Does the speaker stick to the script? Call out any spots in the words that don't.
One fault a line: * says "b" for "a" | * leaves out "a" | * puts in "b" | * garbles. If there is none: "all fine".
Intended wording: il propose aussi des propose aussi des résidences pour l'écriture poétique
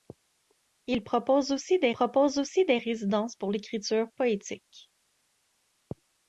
all fine